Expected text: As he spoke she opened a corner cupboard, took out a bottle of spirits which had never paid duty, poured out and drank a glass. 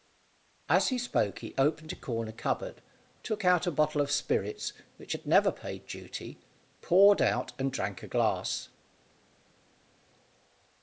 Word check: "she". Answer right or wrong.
wrong